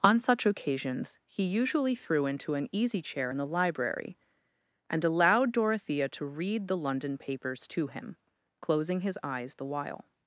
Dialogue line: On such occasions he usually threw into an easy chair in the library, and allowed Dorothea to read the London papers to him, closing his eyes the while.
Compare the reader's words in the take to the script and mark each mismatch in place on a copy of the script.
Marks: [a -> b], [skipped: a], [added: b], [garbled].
On such occasions he usually threw into an easy chair in the library, and allowed Dorothea to read the London papers to him, closing his eyes the while.